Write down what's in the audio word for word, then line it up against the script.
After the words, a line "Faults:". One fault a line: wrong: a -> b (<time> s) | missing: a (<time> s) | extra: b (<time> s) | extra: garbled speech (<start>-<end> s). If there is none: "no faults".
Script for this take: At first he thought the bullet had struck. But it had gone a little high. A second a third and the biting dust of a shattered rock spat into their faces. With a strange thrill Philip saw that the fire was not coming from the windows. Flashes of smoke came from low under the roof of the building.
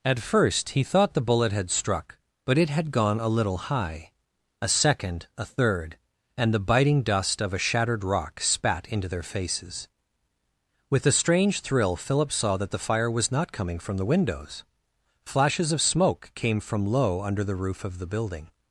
At first he thought the bullet had struck. But it had gone a little high. A second a third and the biting dust of a shattered rock spat into their faces. With a strange thrill Philip saw that the fire was not coming from the windows. Flashes of smoke came from low under the roof of the building.
Faults:
no faults